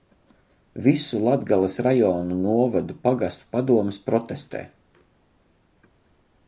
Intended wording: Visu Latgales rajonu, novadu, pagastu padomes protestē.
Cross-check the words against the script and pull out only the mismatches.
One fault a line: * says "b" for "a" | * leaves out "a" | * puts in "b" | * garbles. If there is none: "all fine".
all fine